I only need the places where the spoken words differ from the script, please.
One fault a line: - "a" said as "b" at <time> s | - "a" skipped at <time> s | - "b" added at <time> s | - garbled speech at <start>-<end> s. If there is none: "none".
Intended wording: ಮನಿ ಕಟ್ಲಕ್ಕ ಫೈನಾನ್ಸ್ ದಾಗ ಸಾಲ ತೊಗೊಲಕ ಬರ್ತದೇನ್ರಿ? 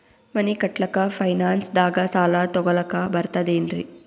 none